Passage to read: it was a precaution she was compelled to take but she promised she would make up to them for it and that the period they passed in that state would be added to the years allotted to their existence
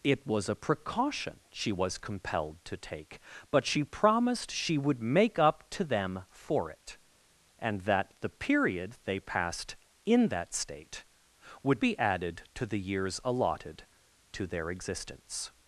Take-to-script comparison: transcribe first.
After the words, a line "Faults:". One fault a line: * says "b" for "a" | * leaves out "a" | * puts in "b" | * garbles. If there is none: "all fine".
it was a precaution she was compelled to take but she promised she would make up to them for it and that the period they passed in that state would be added to the years allotted to their existence
Faults:
all fine